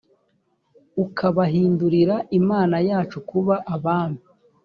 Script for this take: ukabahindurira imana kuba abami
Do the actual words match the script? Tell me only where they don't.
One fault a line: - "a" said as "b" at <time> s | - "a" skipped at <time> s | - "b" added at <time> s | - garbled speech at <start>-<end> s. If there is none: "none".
- "yacu" added at 2.9 s